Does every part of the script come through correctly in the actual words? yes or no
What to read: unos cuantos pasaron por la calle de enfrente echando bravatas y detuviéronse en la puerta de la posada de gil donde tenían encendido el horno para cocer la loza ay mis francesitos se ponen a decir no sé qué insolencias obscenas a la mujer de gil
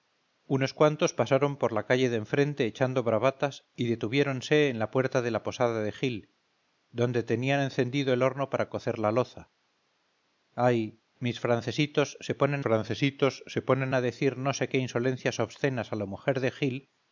no